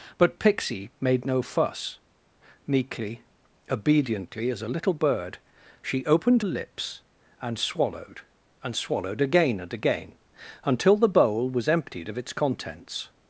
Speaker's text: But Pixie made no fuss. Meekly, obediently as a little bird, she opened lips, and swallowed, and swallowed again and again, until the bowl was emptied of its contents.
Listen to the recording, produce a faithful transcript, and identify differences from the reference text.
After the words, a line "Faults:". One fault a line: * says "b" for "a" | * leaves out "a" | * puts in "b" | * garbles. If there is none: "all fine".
But Pixie made no fuss. Meekly, obediently as a little bird, she opened lips, and swallowed, and swallowed again and again, until the bowl was emptied of its contents.
Faults:
all fine